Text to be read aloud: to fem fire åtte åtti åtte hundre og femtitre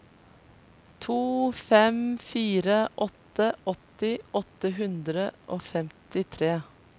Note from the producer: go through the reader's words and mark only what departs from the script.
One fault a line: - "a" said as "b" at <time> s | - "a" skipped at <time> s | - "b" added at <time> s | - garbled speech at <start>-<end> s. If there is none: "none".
none